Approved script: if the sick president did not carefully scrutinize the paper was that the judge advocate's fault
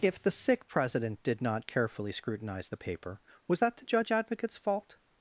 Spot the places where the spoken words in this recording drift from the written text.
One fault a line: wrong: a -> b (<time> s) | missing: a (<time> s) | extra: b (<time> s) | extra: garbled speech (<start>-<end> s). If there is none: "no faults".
no faults